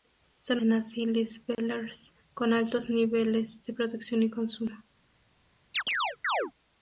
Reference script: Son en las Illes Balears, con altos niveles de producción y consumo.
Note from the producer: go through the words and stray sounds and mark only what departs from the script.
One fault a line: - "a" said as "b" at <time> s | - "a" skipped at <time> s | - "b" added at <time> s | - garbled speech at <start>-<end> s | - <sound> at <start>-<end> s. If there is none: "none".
- dropout at 1.5-1.6 s
- chirp at 5.7-6.5 s